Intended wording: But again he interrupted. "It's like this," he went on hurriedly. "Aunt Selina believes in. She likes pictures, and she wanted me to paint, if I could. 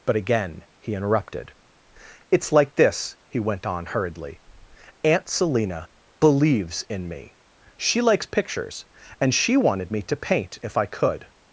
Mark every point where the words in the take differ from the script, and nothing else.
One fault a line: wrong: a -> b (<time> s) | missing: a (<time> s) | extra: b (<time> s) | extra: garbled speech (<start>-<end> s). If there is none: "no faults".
extra: me (7.1 s)